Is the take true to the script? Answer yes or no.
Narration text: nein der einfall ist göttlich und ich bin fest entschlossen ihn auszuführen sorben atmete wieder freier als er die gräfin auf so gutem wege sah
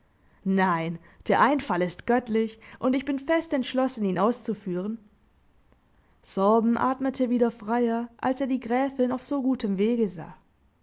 yes